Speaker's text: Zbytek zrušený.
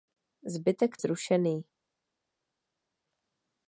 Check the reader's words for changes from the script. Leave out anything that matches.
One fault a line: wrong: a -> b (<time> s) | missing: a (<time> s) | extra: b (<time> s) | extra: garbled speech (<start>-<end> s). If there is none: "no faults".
no faults